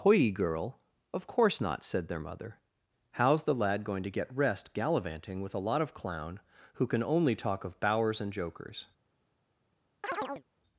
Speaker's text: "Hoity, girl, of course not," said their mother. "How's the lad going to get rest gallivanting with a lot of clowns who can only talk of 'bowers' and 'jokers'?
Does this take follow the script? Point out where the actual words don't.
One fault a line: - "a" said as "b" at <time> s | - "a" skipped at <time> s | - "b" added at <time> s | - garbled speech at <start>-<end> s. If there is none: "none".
- "clowns" said as "clown" at 5.9 s